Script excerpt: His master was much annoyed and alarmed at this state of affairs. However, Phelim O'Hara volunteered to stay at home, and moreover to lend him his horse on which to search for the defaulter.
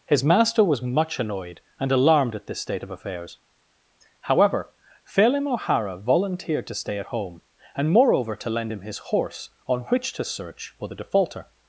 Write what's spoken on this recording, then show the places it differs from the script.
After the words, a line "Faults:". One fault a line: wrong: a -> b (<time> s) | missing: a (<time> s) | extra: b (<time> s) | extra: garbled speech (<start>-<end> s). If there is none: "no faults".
His master was much annoyed and alarmed at this state of affairs. However, Phelim O'Hara volunteered to stay at home, and moreover to lend him his horse on which to search for the defaulter.
Faults:
no faults